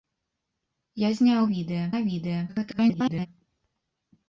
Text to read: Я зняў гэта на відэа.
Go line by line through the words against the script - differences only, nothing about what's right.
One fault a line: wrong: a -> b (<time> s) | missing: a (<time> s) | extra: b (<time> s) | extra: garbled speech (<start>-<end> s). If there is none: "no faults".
wrong: гэта -> відэа (1.5 s)
extra: garbled speech (2.5-3.3 s)